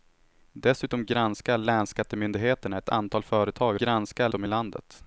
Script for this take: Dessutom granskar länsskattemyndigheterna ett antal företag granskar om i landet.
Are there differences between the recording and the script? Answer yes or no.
no